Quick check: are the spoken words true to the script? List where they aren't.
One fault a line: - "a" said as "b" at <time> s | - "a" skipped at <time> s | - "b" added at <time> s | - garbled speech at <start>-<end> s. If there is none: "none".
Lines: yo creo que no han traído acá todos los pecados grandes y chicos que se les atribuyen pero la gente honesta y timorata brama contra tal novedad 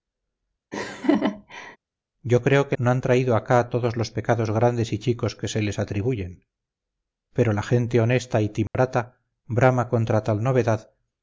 none